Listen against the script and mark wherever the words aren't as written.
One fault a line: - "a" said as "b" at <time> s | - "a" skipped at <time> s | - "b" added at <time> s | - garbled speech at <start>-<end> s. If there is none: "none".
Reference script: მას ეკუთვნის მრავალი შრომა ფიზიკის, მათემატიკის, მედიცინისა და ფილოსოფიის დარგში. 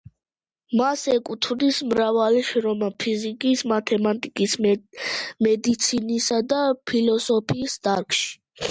none